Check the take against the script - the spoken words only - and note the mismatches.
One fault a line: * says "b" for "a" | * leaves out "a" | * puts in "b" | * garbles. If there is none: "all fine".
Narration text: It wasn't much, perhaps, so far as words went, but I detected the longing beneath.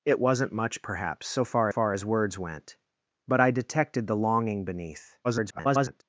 * puts in "far"
* garbles